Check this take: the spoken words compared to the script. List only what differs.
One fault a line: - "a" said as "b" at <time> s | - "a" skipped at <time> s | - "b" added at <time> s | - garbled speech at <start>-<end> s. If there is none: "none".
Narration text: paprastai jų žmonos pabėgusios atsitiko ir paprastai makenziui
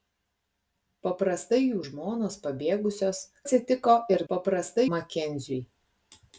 none